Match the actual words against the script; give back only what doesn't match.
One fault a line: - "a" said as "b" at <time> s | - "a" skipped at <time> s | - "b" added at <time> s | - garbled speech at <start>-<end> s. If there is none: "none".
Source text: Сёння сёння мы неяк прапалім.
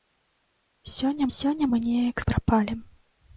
none